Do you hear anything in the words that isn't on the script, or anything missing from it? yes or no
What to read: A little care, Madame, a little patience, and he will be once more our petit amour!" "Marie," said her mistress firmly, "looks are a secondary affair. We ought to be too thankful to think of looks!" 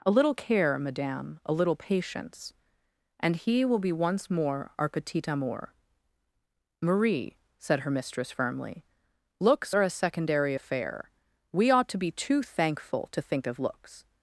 no